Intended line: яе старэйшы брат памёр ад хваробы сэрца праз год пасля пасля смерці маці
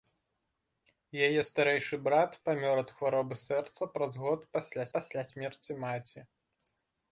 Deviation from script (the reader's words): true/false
false